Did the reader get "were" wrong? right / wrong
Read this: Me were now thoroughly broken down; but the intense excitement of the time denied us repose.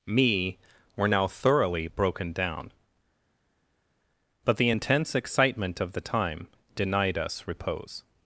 right